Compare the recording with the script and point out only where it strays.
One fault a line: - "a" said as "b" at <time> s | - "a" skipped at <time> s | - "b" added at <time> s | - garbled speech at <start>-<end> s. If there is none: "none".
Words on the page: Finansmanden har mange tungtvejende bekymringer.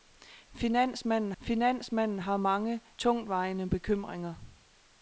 - "finansmanden" added at 1.4 s